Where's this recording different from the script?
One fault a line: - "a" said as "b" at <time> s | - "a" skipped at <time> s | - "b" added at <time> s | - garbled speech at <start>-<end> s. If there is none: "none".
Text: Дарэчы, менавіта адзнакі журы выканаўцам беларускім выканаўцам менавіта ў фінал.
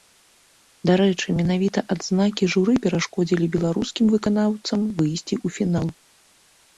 - "выканаўцам" said as "перашкодзілі" at 2.8 s
- "менавіта" said as "выйсці" at 5.0 s